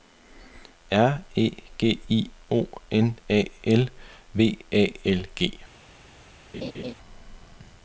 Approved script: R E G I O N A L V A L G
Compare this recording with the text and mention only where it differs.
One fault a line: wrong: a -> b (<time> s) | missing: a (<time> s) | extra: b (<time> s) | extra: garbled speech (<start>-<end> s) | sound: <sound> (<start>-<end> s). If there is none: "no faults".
sound: laugh (6.5-6.9 s)